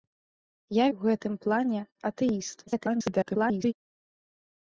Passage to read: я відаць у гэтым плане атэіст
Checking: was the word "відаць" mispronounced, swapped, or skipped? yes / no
yes